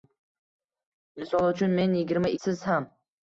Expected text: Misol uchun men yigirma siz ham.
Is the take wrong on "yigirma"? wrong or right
right